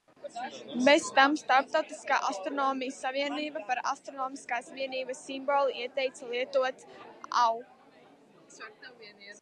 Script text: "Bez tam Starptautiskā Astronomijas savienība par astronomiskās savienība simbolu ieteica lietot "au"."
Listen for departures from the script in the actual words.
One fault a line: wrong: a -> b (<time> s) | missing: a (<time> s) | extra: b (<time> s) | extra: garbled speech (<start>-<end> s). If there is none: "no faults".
wrong: savienība -> vienības (4.8 s)